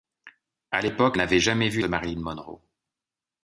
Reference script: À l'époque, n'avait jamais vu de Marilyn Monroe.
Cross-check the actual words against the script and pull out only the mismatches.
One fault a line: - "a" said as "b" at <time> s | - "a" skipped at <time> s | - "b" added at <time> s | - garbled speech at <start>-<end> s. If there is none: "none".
none